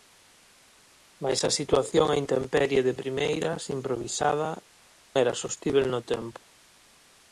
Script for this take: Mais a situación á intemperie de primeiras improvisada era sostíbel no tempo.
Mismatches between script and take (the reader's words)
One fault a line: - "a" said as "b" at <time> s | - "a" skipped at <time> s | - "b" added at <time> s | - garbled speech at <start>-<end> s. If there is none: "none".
none